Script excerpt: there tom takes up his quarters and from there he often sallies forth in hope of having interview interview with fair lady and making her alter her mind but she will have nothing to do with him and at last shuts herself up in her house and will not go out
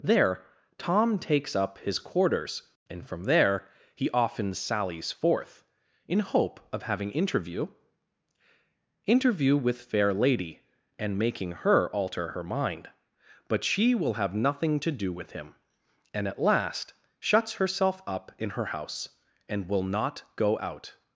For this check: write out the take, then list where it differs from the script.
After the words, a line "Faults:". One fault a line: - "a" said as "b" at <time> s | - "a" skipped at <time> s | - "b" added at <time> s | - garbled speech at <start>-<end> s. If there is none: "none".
there tom takes up his quarters and from there he often sallies forth in hope of having interview interview with fair lady and making her alter her mind but she will have nothing to do with him and at last shuts herself up in her house and will not go out
Faults:
none